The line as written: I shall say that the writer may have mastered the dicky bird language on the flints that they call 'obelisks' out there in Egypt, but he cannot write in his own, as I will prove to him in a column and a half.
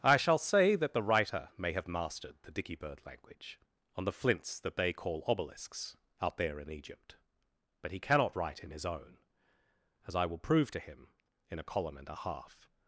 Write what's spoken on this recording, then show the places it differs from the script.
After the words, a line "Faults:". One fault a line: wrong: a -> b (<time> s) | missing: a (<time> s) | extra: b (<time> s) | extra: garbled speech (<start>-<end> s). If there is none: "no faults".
I shall say that the writer may have mastered the dicky bird language on the flints that they call 'obelisks' out there in Egypt, but he cannot write in his own, as I will prove to him in a column and a half.
Faults:
no faults